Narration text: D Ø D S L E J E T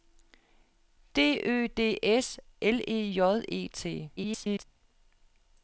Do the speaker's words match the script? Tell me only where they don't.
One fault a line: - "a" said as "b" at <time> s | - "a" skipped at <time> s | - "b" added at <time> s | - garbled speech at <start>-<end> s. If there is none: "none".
- garbled speech at 4.2-4.6 s